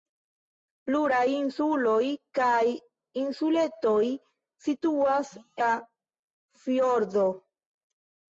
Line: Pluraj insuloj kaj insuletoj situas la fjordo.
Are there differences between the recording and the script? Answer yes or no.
no